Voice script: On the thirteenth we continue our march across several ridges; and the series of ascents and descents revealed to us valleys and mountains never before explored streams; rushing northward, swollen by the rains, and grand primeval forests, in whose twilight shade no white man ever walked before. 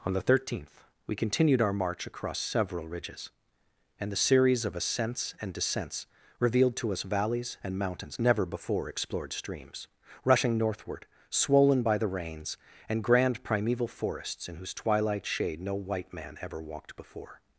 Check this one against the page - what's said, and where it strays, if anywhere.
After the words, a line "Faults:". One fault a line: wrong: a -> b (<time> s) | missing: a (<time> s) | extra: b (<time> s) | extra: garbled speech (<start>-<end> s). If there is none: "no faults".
On the thirteenth we continued our march across several ridges; and the series of ascents and descents revealed to us valleys and mountains never before explored streams; rushing northward, swollen by the rains, and grand primeval forests, in whose twilight shade no white man ever walked before.
Faults:
wrong: continue -> continued (1.1 s)